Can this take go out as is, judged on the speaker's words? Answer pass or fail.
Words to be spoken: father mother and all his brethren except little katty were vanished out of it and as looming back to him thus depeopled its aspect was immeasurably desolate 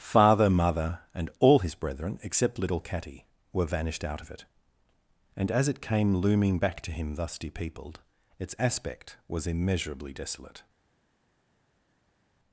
fail